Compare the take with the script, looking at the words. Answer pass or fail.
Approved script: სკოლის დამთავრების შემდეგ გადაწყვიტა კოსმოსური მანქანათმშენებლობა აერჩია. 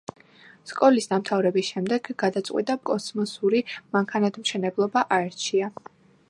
pass